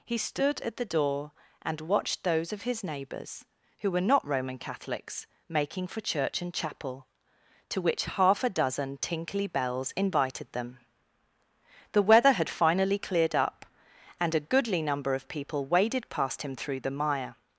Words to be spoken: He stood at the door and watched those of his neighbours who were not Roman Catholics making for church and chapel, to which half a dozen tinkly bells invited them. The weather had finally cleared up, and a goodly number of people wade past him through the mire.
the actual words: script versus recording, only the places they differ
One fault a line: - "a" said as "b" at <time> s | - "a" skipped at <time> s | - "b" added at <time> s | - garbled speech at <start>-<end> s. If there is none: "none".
- "wade" said as "waded" at 15.7 s